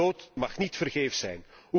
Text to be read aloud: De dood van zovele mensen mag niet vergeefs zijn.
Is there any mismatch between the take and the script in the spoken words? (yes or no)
yes